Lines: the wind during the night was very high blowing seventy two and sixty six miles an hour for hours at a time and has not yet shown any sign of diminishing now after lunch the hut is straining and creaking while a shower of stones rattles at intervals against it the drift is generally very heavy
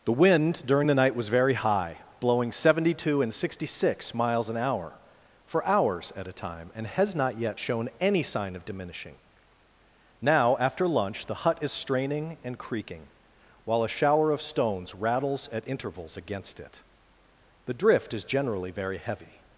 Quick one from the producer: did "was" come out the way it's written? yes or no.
yes